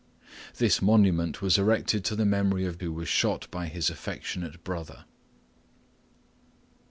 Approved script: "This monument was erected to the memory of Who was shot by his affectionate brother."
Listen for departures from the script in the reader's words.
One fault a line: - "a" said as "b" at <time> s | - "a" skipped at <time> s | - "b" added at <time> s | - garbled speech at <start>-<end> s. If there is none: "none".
none